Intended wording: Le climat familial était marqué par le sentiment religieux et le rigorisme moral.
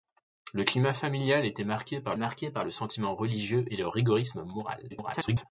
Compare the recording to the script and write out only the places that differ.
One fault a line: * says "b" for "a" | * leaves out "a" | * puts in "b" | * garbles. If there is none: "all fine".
* puts in "marqué par"
* garbles